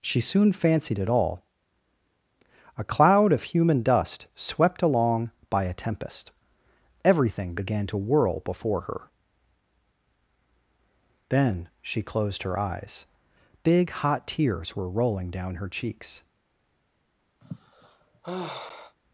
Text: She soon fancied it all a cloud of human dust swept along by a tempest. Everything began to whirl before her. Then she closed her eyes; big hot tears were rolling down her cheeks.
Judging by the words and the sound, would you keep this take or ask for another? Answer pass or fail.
fail